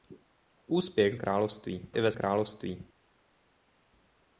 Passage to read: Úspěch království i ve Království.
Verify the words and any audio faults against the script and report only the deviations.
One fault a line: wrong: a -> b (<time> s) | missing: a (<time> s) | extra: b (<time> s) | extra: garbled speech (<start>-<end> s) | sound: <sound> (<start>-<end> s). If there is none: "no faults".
no faults